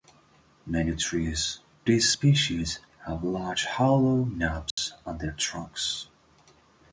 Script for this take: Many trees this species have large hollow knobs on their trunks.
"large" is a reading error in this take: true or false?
false